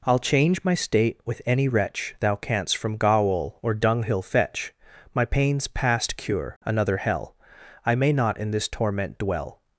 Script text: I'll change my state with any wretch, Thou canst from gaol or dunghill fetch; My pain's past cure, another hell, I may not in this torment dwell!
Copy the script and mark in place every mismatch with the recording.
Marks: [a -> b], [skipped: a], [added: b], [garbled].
I'll change my state with any wretch, Thou canst from gaol or dunghill fetch; My pain's past cure, another hell, I may not in this torment dwell!